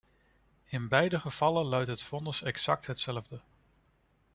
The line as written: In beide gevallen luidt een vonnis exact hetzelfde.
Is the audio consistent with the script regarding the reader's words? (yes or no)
no